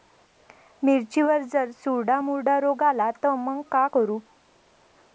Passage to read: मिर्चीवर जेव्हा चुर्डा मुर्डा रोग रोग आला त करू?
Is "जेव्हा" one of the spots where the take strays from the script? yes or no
yes